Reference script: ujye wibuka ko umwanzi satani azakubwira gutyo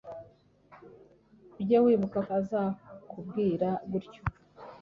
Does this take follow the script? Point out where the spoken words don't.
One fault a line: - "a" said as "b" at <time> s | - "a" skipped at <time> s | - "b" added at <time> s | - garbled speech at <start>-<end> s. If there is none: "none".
- "ko umwanzi satani" skipped at 2.2 s